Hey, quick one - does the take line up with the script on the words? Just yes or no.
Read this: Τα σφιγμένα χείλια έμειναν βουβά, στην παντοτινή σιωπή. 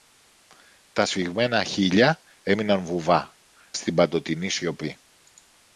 yes